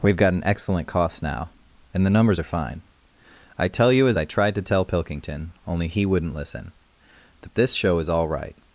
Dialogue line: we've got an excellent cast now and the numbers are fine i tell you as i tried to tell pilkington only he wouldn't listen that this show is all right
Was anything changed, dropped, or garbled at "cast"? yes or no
yes